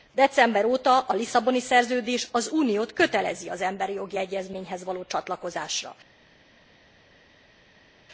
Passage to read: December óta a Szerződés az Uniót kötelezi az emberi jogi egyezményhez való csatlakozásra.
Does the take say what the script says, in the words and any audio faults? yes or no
no